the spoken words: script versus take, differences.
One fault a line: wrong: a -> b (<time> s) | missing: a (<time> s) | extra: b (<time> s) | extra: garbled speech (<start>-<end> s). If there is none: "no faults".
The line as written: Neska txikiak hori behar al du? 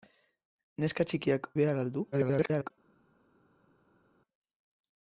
missing: hori (1.5 s)
extra: garbled speech (2.1-2.7 s)